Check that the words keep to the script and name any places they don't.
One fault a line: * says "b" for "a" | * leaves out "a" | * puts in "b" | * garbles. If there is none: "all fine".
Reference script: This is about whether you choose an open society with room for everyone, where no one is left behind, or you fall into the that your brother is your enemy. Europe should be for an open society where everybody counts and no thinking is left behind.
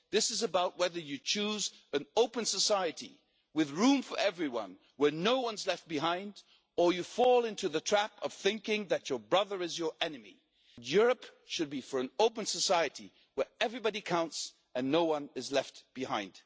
* puts in "trap of thinking"
* says "one" for "thinking"